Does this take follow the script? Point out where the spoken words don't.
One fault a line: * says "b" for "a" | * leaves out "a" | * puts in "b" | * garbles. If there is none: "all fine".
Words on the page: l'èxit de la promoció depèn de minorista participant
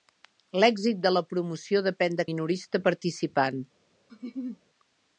all fine